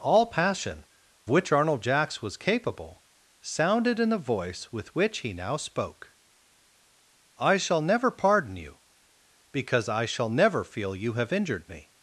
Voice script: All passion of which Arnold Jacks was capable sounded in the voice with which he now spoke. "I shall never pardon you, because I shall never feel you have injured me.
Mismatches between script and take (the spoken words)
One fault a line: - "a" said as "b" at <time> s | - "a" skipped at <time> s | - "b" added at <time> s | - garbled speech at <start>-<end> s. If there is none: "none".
- "of" skipped at 0.8 s